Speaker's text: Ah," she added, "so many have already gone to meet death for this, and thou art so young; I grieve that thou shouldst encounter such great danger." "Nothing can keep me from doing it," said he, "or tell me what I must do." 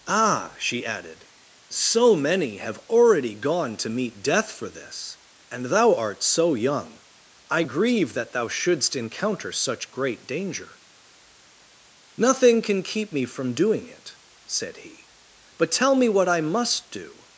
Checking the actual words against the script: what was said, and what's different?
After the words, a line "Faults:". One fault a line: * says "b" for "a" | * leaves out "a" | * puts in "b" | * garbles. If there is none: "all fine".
Ah," she added, "so many have already gone to meet death for this, and thou art so young; I grieve that thou shouldst encounter such great danger." "Nothing can keep me from doing it," said he, "but tell me what I must do."
Faults:
* says "but" for "or"